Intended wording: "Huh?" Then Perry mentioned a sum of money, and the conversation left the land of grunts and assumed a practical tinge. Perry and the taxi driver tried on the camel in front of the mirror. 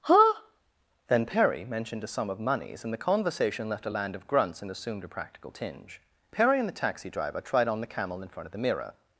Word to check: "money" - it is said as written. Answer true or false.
false